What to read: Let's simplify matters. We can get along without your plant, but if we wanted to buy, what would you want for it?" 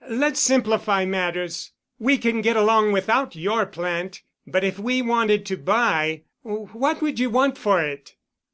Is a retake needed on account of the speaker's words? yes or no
no